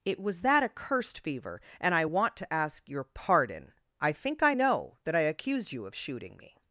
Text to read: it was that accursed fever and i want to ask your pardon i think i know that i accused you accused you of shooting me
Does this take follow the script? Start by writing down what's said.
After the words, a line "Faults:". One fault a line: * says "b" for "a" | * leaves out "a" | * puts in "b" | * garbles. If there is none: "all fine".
it was that accursed fever and i want to ask your pardon i think i know that i accused you of shooting me
Faults:
* leaves out "accused you"